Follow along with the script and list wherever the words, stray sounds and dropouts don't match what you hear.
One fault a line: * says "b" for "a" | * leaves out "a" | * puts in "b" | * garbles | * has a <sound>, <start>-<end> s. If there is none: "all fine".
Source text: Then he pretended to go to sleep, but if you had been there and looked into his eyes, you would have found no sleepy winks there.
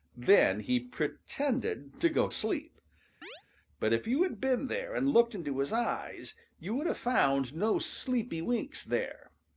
* leaves out "to"
* has a chirp, 3.2-3.4 s